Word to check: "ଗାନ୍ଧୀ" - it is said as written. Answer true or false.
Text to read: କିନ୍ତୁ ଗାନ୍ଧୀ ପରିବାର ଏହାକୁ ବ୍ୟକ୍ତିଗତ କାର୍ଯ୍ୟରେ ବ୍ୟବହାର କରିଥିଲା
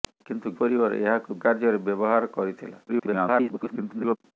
false